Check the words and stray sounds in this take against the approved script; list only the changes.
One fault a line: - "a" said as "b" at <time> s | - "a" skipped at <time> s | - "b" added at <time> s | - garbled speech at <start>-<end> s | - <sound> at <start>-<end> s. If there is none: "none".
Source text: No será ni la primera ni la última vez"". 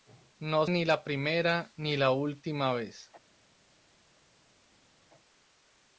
- "será" skipped at 0.7 s